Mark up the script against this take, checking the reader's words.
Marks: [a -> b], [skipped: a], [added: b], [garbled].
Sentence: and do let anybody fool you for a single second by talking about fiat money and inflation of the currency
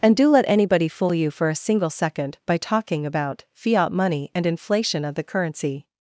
and do let anybody fool you for a single second by talking about fiat money and inflation of the currency